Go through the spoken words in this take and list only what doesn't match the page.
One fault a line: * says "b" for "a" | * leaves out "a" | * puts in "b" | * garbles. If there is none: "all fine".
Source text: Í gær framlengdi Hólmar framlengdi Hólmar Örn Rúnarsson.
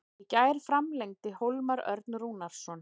* leaves out "framlengdi Hólmar"